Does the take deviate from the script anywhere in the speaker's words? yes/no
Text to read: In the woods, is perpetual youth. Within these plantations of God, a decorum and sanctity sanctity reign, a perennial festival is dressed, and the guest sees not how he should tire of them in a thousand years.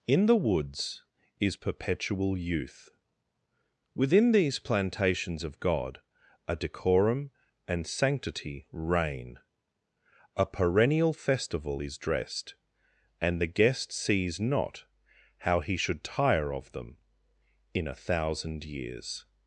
yes